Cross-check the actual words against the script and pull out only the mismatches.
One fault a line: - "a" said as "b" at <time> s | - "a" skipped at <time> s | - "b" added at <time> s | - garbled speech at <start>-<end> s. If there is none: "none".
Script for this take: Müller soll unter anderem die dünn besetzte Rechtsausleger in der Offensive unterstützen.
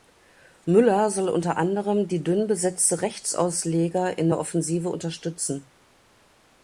none